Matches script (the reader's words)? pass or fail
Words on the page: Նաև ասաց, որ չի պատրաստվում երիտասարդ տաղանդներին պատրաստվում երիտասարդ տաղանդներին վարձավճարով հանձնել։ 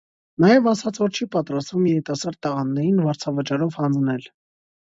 fail